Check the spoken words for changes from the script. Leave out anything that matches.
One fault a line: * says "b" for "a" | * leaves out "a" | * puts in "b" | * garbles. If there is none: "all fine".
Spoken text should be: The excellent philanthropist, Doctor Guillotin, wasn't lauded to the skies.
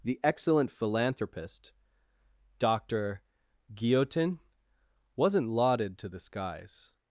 all fine